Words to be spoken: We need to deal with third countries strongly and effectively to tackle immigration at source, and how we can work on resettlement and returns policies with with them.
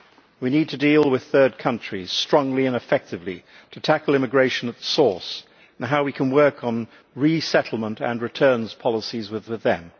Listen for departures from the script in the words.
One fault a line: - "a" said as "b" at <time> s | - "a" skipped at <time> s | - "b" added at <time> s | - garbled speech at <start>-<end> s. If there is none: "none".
none